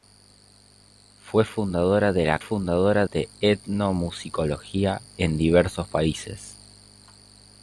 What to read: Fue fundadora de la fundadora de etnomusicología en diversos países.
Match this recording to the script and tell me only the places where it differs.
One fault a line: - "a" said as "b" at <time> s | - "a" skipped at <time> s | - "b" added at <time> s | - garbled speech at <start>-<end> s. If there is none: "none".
none